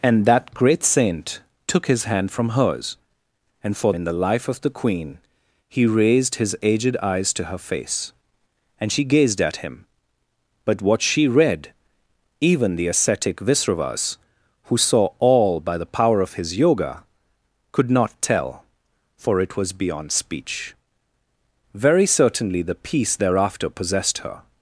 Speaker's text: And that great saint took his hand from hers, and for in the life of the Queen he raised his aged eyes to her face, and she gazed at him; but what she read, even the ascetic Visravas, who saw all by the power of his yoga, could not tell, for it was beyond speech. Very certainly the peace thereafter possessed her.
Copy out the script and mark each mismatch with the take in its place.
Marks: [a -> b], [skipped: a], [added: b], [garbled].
And that great saint took his hand from hers, and for in the life of the Queen he raised his aged eyes to her face, and she gazed at him; but what she read, even the ascetic Visravas, who saw all by the power of his yoga, could not tell, for it was beyond speech. Very certainly the peace thereafter possessed her.